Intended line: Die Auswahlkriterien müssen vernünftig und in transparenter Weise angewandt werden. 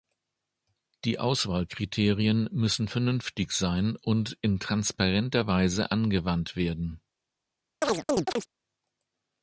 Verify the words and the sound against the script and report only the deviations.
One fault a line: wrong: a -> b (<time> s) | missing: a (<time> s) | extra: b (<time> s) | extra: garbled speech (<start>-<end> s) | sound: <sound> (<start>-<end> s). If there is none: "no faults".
extra: sein (3.5 s)
sound: chirp (7.8-8.5 s)